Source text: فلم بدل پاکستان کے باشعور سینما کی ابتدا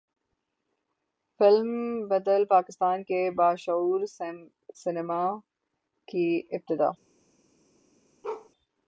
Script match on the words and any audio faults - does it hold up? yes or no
no